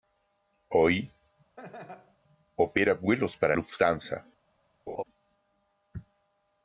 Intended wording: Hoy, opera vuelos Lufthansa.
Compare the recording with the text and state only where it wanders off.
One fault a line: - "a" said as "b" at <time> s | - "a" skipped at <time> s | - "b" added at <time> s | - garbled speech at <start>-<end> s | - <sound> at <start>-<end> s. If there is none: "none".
- laugh at 1.6-2.2 s
- "para" added at 3.4 s
- laugh at 4.9-5.0 s